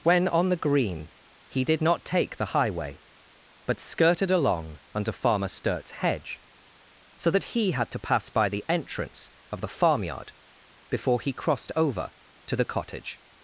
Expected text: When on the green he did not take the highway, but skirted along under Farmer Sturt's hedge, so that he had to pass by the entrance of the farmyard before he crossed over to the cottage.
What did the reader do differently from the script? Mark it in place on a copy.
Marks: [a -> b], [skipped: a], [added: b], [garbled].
When on the green he did not take the highway, but skirted along under Farmer Sturt's hedge, so that he had to pass by the entrance of the farmyard before he crossed over to the cottage.